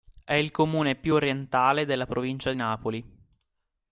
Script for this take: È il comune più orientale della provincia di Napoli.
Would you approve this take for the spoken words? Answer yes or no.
no